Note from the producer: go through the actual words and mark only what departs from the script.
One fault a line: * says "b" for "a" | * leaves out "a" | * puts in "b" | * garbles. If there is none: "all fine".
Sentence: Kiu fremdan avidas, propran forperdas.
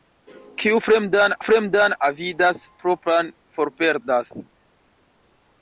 * puts in "fremdan"